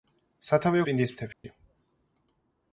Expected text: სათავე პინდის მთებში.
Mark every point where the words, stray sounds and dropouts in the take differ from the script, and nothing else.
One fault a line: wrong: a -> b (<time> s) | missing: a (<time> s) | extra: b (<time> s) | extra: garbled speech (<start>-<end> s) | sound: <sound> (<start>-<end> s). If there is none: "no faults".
sound: dropout (1.3-1.4 s)